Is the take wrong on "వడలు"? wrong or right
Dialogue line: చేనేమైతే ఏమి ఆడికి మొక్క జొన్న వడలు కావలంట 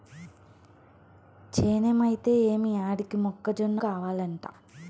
wrong